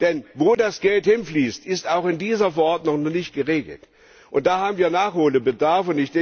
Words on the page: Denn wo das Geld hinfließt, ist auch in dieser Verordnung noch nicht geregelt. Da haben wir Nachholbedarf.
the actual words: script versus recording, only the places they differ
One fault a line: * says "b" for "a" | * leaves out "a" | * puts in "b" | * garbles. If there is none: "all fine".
all fine